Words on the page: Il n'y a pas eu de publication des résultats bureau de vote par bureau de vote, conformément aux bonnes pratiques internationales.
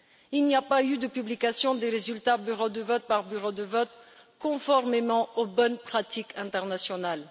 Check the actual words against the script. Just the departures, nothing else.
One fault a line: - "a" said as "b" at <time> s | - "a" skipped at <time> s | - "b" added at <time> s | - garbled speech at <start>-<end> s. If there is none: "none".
none